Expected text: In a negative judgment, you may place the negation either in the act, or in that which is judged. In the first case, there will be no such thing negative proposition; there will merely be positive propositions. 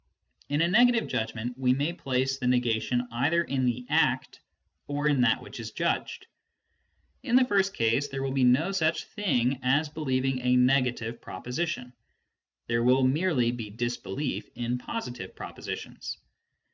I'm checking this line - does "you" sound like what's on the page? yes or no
no